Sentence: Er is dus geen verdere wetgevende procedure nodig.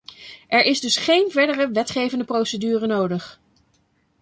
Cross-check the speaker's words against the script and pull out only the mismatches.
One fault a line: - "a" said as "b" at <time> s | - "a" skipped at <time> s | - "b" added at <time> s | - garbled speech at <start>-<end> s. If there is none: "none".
none